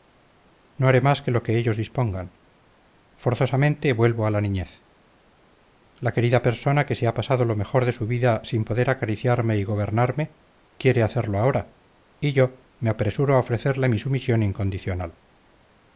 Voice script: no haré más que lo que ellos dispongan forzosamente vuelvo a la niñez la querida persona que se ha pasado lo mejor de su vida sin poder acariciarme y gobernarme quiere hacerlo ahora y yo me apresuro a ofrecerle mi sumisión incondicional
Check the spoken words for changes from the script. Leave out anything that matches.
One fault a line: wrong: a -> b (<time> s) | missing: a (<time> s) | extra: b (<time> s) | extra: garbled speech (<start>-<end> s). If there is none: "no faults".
no faults